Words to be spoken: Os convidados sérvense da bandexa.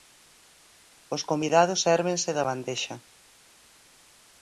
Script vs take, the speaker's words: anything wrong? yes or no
no